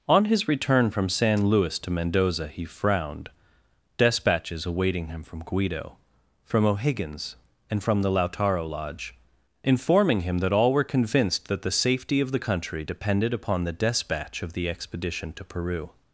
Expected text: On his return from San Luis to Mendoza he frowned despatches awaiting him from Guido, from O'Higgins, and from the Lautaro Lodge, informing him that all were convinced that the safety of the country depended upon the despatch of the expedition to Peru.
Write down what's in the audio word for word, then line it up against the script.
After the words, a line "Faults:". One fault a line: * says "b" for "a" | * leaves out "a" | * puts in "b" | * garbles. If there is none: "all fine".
On his return from San Luis to Mendoza he frowned despatches awaiting him from Guido, from O'Higgins, and from the Lautaro Lodge, informing him that all were convinced that the safety of the country depended upon the despatch of the expedition to Peru.
Faults:
all fine